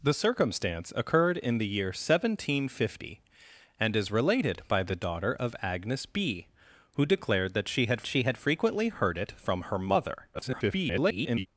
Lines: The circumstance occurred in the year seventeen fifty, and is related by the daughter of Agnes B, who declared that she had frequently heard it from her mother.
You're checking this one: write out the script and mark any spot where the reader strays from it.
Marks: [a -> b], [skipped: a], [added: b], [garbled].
The circumstance occurred in the year seventeen fifty, and is related by the daughter of Agnes B, who declared that she had [added: she had] frequently heard it from her mother. [garbled]